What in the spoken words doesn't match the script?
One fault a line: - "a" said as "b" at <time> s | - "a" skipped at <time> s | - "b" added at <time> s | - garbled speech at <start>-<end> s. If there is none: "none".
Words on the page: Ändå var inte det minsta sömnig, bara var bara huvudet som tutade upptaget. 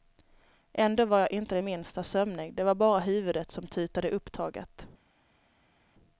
- "jag" added at 1.2 s
- "bara" said as "det" at 2.5 s